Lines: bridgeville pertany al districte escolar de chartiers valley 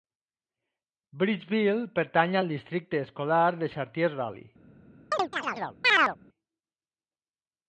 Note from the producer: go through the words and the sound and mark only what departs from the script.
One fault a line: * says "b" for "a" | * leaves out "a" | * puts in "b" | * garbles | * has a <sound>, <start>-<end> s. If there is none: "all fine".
* has a chirp, 5.1-6.2 s